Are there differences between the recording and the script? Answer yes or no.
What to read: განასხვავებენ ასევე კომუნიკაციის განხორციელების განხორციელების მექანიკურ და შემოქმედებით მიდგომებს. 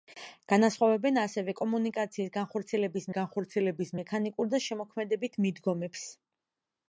no